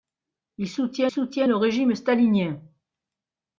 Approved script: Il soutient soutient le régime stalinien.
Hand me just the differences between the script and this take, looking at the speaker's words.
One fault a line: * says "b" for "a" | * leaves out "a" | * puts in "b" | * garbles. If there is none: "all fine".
all fine